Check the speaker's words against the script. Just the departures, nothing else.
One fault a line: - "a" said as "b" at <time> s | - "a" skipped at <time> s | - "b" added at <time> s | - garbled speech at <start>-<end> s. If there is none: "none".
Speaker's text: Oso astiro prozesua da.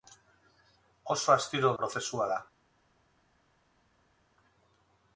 none